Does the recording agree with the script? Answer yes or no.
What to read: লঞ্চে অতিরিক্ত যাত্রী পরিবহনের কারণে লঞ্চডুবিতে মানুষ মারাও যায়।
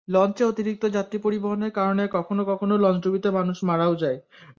no